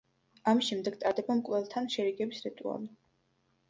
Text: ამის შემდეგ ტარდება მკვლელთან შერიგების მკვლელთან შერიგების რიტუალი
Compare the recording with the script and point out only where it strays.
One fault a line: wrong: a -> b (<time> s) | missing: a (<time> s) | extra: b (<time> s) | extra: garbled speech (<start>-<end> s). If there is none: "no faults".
missing: მკვლელთან შერიგების (2.5 s)